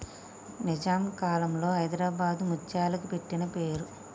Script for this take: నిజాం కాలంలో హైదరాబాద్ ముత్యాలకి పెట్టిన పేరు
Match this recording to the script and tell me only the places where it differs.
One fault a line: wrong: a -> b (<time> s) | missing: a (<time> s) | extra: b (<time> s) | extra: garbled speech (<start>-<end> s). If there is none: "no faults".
no faults